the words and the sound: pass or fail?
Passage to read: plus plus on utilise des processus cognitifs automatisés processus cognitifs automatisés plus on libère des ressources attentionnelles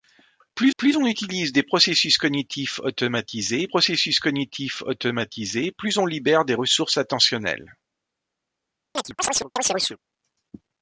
fail